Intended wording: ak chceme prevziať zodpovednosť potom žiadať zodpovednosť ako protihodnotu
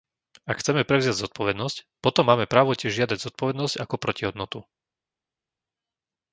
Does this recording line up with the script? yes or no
no